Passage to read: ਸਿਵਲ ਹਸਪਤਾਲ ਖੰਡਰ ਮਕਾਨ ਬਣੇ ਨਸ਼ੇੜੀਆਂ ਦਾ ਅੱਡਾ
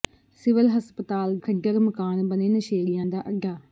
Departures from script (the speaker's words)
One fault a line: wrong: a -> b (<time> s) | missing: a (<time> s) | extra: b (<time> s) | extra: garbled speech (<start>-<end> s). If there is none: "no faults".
no faults